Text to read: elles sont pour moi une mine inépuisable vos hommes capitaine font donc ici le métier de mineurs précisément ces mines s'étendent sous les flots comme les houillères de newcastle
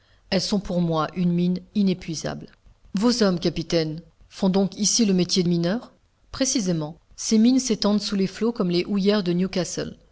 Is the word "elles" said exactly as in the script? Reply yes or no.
yes